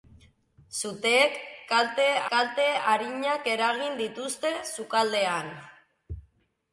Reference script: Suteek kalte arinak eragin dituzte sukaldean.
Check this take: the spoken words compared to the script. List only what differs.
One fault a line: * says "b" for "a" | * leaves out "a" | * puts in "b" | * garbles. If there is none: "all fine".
* puts in "kalte"